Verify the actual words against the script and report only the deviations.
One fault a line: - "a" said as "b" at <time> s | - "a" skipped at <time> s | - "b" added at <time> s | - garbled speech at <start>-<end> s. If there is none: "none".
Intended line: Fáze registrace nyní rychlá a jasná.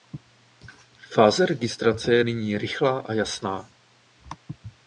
- "je" added at 2.1 s